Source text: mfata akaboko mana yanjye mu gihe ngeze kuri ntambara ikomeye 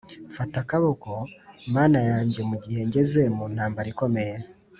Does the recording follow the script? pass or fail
fail